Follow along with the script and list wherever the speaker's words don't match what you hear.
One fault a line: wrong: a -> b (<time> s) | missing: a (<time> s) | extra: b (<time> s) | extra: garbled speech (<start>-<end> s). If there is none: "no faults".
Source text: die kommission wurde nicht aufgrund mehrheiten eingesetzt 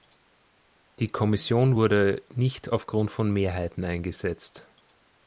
extra: von (3.1 s)